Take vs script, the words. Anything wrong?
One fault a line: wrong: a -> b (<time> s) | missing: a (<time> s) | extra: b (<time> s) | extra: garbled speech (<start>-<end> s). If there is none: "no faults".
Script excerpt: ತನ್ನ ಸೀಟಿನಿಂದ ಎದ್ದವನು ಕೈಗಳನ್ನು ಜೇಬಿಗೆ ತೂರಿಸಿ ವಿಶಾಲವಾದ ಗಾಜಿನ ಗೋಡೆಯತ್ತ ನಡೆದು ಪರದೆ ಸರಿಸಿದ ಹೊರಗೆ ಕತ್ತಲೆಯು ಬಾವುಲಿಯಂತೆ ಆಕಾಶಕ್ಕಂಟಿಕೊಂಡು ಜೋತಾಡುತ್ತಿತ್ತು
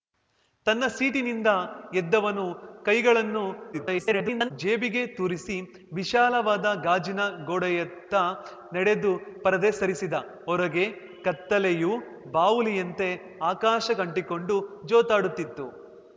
extra: garbled speech (3.7-4.5 s)